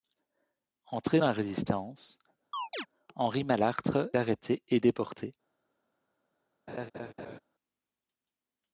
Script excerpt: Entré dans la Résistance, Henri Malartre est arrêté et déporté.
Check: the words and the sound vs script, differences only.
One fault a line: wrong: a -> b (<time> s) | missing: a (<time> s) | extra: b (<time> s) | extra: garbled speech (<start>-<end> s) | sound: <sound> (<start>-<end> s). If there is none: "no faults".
sound: chirp (2.5-2.9 s)
missing: est (4.1 s)
sound: laugh (6.7-7.4 s)